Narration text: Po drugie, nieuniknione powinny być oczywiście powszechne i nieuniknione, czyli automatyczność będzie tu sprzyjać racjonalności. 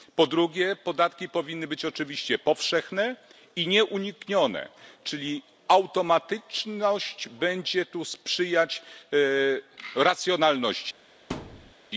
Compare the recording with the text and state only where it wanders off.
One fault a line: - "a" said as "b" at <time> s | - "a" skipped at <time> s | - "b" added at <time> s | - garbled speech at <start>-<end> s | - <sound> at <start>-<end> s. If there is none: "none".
- "nieuniknione" said as "podatki" at 0.8 s
- thud at 11.3-11.7 s